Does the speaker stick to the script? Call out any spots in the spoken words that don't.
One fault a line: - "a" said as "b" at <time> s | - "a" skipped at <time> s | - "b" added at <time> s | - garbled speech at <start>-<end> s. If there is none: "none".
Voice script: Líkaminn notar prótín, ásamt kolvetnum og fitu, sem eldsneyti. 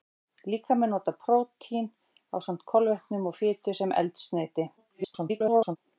- garbled speech at 4.8-5.8 s